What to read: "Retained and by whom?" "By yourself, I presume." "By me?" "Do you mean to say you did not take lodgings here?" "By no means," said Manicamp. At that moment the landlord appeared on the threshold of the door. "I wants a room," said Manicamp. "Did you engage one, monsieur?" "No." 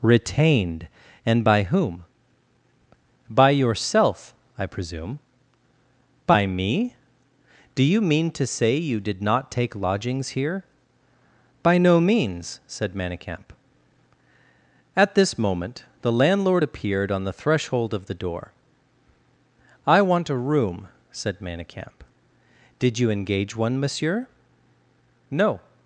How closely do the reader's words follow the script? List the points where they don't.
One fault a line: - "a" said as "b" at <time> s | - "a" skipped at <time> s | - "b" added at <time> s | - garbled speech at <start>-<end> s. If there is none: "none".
- "that" said as "this" at 15.2 s
- "wants" said as "want" at 20.0 s